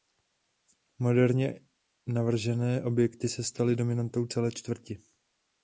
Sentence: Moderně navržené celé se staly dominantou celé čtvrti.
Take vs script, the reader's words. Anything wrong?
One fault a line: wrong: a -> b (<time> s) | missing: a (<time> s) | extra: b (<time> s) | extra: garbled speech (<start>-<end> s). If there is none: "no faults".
wrong: celé -> objekty (2.8 s)